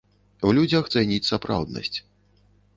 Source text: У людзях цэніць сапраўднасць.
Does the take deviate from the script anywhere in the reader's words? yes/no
no